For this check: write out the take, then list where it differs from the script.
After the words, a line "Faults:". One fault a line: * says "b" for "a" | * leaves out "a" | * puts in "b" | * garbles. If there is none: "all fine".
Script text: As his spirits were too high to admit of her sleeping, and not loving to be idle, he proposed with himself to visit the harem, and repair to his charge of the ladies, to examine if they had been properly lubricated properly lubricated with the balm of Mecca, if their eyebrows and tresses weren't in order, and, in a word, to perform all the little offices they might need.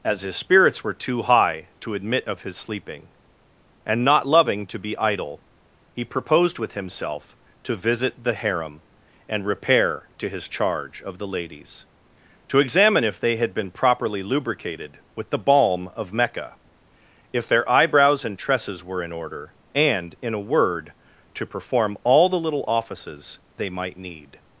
As his spirits were too high to admit of his sleeping, and not loving to be idle, he proposed with himself to visit the harem, and repair to his charge of the ladies, to examine if they had been properly lubricated with the balm of Mecca, if their eyebrows and tresses were in order, and, in a word, to perform all the little offices they might need.
Faults:
* says "his" for "her"
* leaves out "properly lubricated"
* says "were" for "weren't"